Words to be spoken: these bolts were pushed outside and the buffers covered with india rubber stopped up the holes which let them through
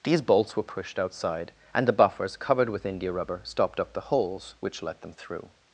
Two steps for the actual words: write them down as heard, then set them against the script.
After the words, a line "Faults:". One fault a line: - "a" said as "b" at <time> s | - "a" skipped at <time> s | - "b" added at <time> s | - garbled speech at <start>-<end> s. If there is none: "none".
these bolts were pushed outside and the buffers covered with india rubber stopped up the holes which let them through
Faults:
none